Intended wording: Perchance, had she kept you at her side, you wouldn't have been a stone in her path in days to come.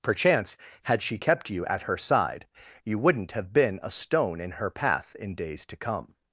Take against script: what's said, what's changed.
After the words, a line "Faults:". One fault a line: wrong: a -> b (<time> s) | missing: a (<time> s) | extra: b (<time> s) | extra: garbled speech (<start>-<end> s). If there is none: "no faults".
Perchance, had she kept you at her side, you wouldn't have been a stone in her path in days to come.
Faults:
no faults